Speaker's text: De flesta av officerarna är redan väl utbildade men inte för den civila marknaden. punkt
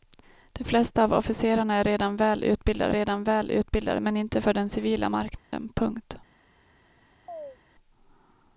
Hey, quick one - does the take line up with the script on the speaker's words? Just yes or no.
no